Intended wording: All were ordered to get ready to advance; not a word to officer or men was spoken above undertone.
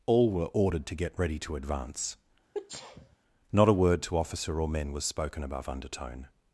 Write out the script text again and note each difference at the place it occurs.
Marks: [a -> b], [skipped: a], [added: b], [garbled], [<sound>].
All were ordered to get ready to advance; [sneeze] not a word to officer or men was spoken above undertone.